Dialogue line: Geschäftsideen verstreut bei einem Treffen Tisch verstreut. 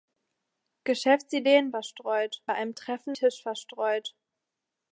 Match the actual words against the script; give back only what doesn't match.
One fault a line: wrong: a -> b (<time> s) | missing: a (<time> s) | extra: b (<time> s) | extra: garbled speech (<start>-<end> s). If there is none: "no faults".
no faults